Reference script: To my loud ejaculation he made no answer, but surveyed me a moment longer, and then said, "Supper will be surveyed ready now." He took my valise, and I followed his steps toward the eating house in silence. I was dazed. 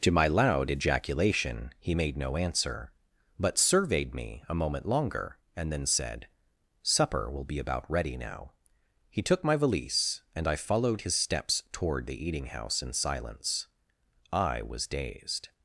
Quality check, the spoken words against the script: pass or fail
fail